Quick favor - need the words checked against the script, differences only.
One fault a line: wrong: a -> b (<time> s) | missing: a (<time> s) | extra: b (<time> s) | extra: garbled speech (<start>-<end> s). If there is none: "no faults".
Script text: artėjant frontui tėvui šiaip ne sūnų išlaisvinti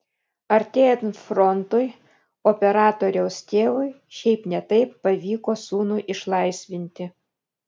extra: operatoriaus (2.5 s)
extra: taip pavyko (4.7 s)